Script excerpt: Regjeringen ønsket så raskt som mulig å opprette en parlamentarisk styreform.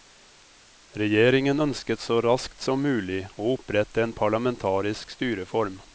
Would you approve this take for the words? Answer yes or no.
yes